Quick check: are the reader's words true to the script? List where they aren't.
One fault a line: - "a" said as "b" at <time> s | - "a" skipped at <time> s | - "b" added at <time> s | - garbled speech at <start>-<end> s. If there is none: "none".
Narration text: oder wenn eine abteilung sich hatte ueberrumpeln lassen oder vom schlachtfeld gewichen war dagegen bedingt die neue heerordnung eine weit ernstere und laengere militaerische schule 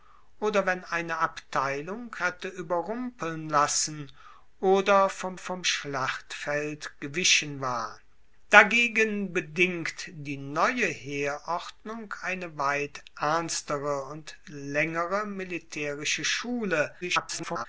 - "sich" skipped at 2.1 s
- "vom" added at 5.3 s
- garbled speech at 17.0-17.7 s